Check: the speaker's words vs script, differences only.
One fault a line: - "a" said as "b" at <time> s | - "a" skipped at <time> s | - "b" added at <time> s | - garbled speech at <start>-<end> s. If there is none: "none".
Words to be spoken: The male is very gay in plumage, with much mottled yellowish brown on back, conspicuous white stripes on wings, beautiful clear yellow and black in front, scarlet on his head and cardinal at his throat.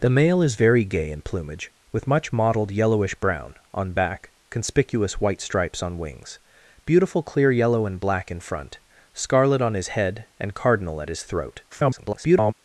- garbled speech at 11.7-12.5 s